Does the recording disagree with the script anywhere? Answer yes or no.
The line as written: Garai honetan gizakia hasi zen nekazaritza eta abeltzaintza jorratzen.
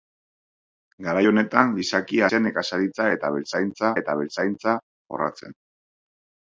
yes